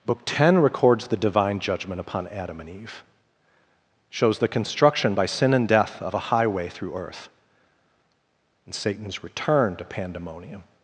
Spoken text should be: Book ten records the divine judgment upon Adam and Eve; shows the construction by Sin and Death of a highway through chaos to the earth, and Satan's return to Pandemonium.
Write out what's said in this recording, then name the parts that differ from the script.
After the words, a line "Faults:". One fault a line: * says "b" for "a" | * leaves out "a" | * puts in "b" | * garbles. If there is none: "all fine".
Book ten records the divine judgment upon Adam and Eve; shows the construction by Sin and Death of a highway through earth, and Satan's return to Pandemonium.
Faults:
* leaves out "chaos to the"